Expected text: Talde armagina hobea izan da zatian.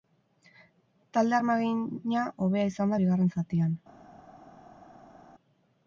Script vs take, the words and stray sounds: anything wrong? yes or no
yes